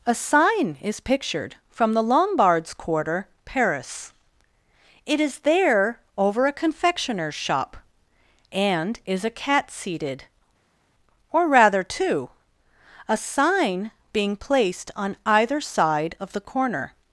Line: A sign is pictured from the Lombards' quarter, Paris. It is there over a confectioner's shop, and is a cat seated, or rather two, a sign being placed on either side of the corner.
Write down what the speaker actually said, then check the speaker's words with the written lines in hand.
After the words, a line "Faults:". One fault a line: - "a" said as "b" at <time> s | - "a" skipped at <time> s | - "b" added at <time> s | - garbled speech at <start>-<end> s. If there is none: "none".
A sign is pictured from the Lombards' quarter, Paris. It is there over a confectioner's shop, and is a cat seated, or rather two, a sign being placed on either side of the corner.
Faults:
none